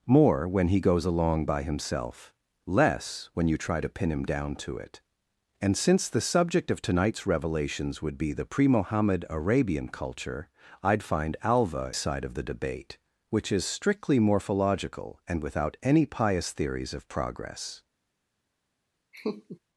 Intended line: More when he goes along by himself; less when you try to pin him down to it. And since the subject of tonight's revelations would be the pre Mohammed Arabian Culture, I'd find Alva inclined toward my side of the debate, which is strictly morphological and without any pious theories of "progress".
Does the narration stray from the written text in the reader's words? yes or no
yes